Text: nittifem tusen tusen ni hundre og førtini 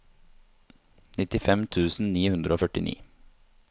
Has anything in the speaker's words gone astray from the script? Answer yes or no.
yes